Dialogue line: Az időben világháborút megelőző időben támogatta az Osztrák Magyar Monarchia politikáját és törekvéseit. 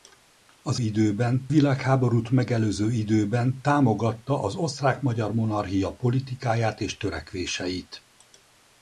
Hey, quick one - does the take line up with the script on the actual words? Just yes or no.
yes